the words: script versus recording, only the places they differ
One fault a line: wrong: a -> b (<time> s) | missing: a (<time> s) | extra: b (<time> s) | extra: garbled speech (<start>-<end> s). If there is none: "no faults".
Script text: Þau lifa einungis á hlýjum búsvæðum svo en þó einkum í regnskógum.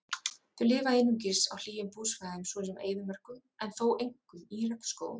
extra: sem eyðimörkum (2.7 s)